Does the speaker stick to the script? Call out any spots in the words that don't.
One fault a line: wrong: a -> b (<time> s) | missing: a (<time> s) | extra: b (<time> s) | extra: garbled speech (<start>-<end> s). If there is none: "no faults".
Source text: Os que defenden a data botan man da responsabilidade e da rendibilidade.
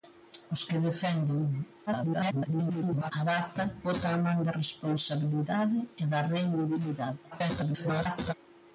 extra: garbled speech (1.9-3.1 s)
extra: garbled speech (7.3-8.3 s)